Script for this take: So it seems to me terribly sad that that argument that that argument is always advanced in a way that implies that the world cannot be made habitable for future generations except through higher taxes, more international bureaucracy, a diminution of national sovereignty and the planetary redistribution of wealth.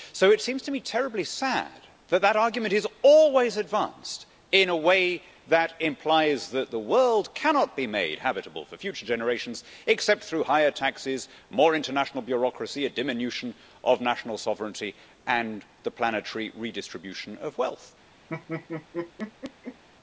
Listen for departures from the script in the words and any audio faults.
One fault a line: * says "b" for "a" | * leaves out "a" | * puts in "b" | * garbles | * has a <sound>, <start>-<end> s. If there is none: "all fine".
* leaves out "that that argument"
* has a laugh, 18.3-19.8 s